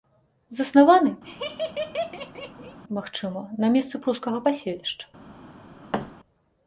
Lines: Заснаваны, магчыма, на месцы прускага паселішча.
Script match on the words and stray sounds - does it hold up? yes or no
no